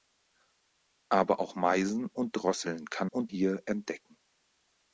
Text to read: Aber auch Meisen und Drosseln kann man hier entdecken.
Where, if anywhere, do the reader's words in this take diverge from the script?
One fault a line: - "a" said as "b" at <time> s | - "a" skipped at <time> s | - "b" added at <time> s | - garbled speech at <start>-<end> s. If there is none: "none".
- "man" said as "und" at 3.0 s